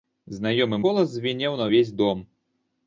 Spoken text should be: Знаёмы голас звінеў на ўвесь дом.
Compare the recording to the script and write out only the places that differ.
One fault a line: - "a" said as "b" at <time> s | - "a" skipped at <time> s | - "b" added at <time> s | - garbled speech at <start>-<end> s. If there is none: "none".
none